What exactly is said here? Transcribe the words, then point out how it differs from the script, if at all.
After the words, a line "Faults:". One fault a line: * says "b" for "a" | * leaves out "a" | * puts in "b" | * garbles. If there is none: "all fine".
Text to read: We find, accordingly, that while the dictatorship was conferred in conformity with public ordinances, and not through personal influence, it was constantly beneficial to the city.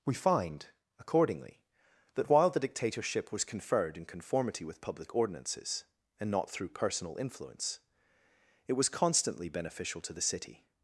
We find, accordingly, that while the dictatorship was conferred in conformity with public ordinances, and not through personal influence, it was constantly beneficial to the city.
Faults:
all fine